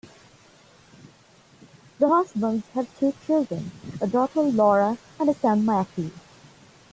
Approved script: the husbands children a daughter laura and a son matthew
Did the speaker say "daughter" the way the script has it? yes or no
yes